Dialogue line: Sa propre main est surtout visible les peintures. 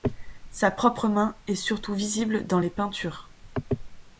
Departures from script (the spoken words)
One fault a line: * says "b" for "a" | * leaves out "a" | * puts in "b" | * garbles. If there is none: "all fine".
* puts in "dans"